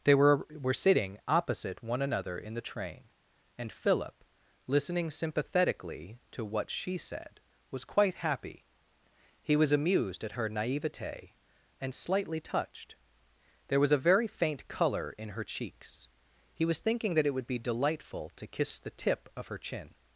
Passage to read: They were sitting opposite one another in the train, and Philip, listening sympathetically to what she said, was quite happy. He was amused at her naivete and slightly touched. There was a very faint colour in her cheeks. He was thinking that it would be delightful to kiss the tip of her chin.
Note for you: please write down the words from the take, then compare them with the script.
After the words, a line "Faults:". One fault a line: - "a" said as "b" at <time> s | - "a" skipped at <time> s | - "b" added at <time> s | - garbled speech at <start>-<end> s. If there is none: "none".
They were were sitting opposite one another in the train, and Philip, listening sympathetically to what she said, was quite happy. He was amused at her naivete and slightly touched. There was a very faint colour in her cheeks. He was thinking that it would be delightful to kiss the tip of her chin.
Faults:
- "were" added at 0.5 s